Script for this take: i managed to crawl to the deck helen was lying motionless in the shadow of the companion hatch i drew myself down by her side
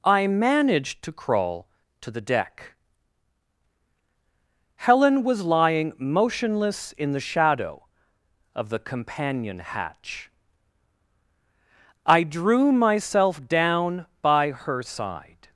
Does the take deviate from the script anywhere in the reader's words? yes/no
no